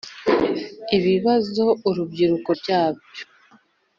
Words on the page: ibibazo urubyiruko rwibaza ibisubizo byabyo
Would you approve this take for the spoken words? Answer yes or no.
no